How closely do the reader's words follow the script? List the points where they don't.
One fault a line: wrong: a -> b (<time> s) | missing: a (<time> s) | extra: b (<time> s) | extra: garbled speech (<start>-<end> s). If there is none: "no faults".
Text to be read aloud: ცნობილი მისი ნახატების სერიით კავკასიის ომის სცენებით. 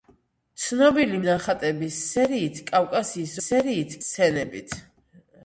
missing: მისი (1.2 s)
wrong: ომის -> სერიით (3.4 s)